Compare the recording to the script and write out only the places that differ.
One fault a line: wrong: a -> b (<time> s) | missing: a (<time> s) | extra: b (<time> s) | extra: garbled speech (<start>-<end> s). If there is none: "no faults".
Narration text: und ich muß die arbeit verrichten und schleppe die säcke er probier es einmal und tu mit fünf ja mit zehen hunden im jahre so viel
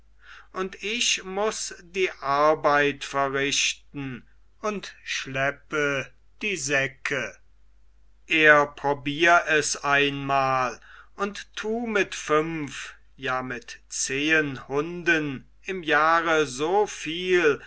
no faults